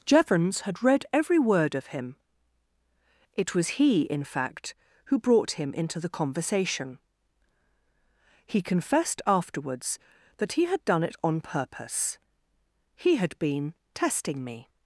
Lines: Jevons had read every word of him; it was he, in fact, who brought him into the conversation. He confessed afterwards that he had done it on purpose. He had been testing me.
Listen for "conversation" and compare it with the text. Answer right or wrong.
right